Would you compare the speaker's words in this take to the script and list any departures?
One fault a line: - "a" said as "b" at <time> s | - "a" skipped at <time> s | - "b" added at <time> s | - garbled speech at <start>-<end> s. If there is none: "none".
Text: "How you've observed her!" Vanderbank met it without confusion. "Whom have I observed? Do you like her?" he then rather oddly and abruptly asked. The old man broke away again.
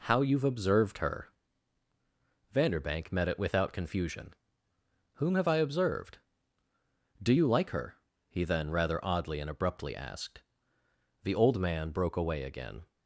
none